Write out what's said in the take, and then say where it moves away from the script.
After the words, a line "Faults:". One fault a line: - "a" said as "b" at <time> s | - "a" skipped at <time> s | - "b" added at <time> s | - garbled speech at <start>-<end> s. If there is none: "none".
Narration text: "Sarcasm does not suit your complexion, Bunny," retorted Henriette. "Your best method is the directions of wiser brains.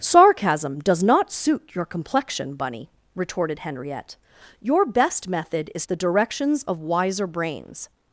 "Sarcasm does not suit your complexion, Bunny," retorted Henriette. "Your best method is the directions of wiser brains.
Faults:
none